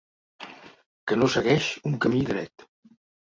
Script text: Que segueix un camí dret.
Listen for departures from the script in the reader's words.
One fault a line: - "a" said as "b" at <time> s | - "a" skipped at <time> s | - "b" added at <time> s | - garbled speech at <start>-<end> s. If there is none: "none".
- "no" added at 1.2 s